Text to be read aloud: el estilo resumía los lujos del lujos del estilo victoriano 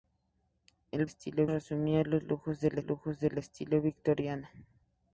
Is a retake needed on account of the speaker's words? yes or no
no